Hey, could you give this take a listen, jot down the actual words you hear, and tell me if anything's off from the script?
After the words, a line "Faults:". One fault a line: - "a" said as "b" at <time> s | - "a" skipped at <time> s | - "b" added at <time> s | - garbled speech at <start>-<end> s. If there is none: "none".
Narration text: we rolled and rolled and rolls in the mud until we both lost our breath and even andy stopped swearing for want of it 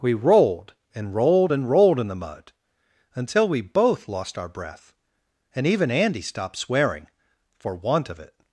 we rolled and rolled and rolled in the mud until we both lost our breath and even andy stopped swearing for want of it
Faults:
- "rolls" said as "rolled" at 1.7 s